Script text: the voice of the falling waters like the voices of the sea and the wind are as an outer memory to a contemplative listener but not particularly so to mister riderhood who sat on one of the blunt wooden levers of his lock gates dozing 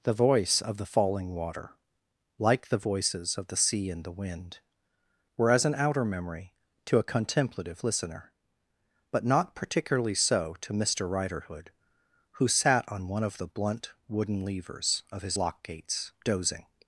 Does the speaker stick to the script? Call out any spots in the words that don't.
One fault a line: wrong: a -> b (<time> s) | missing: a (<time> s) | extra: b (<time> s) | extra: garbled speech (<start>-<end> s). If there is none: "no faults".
wrong: waters -> water (1.4 s)
wrong: are -> were (5.4 s)